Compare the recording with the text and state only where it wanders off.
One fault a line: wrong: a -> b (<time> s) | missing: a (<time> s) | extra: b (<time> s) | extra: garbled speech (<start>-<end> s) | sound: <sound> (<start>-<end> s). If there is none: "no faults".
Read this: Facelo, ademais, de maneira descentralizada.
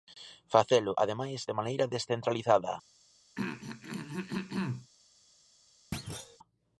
sound: throat clearing (3.4-4.9 s)
sound: thud (5.9-6.4 s)